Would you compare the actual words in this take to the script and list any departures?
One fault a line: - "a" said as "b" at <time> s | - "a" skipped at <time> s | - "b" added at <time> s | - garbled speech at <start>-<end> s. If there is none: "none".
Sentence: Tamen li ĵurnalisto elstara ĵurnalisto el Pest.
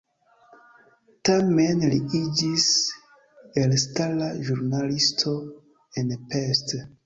- "ĵurnalisto" said as "iĝis" at 2.2 s
- "el" said as "en" at 6.0 s